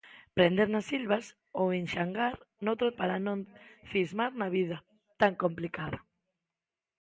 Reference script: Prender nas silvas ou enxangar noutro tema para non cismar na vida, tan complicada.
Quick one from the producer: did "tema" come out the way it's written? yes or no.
no